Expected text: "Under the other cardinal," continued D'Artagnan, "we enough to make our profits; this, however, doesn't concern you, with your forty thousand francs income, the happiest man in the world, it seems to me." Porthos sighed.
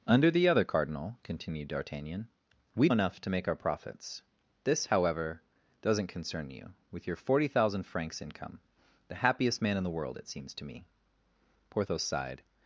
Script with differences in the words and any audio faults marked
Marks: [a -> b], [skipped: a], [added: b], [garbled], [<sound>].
"Under the other cardinal," continued D'Artagnan, "we enough to make our profits; this, however, doesn't concern you, with your forty thousand francs income, the happiest man in the world, it seems to me." Porthos sighed.